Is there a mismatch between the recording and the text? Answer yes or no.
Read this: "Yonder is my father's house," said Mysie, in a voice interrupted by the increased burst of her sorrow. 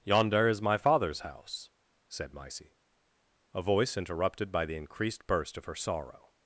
yes